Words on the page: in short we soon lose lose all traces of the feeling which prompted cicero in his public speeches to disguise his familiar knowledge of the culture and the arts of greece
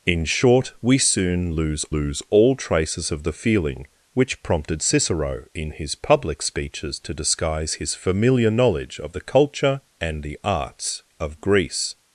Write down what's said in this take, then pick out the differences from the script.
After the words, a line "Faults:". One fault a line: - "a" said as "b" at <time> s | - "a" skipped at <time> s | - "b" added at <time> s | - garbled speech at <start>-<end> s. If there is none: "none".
in short we soon lose lose all traces of the feeling which prompted cicero in his public speeches to disguise his familiar knowledge of the culture and the arts of greece
Faults:
none